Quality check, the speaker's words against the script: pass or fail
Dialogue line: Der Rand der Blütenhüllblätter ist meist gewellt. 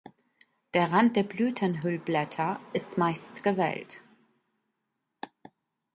pass